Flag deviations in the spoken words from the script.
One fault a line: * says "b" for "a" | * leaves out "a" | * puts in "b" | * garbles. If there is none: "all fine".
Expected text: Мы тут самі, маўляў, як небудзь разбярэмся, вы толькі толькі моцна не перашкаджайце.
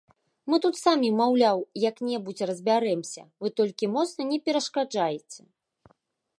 * leaves out "толькі"